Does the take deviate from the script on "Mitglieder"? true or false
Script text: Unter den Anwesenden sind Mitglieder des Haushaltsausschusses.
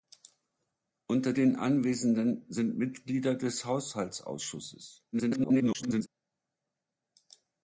false